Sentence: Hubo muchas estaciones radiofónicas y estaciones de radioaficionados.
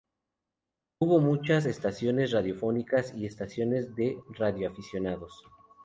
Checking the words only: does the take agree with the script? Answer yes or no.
yes